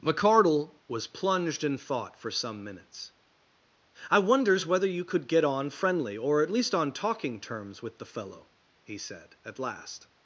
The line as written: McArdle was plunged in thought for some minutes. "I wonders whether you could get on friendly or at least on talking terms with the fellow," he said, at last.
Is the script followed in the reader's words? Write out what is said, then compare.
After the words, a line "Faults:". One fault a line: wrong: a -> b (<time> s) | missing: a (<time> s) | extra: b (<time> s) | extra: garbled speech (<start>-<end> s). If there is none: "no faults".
McArdle was plunged in thought for some minutes. "I wonders whether you could get on friendly or at least on talking terms with the fellow," he said, at last.
Faults:
no faults